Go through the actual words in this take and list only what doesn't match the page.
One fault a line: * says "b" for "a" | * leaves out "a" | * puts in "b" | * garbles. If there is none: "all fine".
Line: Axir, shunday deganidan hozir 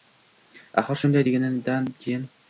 * says "keyin" for "hozir"